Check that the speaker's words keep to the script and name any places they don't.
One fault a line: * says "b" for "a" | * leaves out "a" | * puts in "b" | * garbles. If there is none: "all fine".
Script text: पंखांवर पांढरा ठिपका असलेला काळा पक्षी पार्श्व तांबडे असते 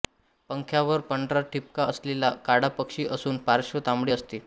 * puts in "असून"